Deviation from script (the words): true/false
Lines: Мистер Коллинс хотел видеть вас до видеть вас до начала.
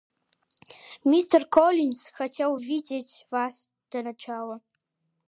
true